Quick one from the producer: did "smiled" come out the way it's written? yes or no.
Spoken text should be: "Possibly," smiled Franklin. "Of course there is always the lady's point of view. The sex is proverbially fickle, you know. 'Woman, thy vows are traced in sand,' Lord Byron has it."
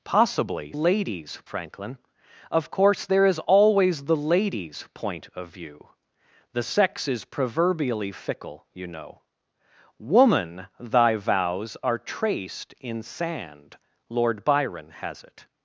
no